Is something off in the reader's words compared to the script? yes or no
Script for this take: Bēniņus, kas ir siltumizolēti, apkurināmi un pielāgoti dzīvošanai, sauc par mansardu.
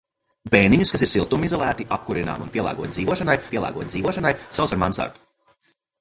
yes